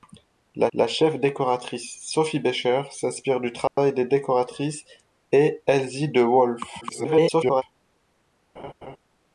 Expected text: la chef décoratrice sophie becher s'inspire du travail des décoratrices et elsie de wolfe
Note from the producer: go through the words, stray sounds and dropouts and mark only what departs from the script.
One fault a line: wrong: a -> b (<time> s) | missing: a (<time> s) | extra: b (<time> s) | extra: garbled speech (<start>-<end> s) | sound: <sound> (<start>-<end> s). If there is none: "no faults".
extra: la (0.7 s)
sound: dropout (3.7-3.8 s)
extra: garbled speech (6.8-7.6 s)
sound: laugh (8.6-9.0 s)